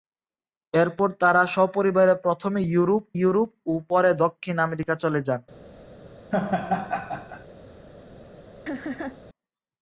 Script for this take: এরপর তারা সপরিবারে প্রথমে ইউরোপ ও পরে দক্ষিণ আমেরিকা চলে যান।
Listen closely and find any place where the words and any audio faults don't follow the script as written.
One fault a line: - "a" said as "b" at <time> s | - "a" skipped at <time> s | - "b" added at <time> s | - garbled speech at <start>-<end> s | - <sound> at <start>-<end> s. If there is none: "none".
- "ইউরোপ" added at 3.2 s
- laugh at 6.3-7.4 s
- laugh at 8.7-9.2 s